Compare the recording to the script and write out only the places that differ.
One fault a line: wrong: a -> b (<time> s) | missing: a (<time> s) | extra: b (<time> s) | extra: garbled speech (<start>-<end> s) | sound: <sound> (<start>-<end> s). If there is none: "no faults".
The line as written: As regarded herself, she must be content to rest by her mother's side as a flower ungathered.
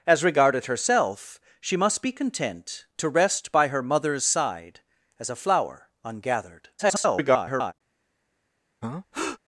extra: garbled speech (6.8-7.7 s)
sound: breath (8.8-9.4 s)